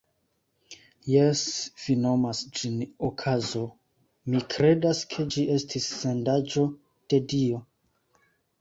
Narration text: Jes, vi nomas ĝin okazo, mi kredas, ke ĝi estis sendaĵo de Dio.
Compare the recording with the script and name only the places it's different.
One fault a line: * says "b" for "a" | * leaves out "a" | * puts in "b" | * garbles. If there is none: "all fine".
all fine